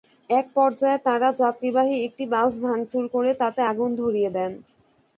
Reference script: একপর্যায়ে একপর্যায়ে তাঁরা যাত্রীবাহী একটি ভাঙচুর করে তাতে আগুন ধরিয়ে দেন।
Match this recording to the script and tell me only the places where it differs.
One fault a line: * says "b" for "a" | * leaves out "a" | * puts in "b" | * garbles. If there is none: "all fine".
* leaves out "একপর্যায়ে"
* puts in "বাস"